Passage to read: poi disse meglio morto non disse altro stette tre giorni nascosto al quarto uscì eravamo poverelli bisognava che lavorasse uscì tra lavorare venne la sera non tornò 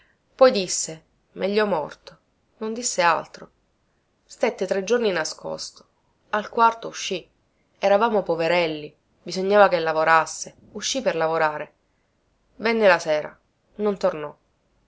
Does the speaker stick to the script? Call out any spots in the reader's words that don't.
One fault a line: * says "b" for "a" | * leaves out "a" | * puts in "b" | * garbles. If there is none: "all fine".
* says "per" for "tra"